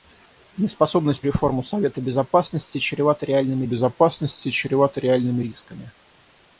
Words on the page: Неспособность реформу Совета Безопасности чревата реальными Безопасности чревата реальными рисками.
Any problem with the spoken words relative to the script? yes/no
no